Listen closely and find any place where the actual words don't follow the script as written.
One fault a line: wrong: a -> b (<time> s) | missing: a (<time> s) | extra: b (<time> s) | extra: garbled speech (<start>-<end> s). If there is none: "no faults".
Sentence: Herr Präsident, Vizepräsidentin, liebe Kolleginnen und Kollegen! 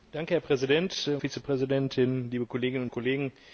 no faults